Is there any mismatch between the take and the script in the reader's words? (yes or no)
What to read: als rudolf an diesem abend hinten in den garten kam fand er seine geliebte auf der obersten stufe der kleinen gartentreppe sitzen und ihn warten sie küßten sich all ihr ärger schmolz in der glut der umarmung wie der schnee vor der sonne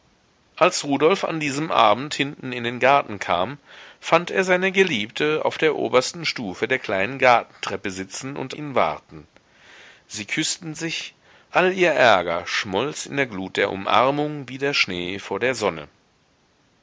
no